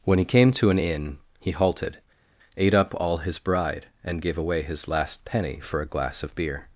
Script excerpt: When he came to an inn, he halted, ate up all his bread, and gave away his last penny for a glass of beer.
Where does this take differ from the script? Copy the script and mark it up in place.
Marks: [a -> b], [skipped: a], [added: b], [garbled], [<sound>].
When he came to an inn, he halted, ate up all his [bread, -> bride] and gave away his last penny for a glass of beer.